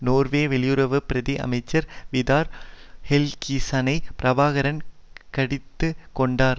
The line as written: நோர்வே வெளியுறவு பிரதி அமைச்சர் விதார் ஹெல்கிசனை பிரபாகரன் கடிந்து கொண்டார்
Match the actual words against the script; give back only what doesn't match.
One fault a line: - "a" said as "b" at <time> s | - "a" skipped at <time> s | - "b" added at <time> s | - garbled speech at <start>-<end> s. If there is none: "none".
none